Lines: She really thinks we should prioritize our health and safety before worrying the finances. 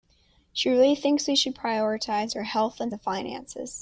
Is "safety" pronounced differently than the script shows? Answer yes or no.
yes